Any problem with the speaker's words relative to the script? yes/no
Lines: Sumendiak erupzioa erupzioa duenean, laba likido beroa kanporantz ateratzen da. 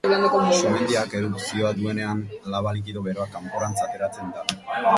yes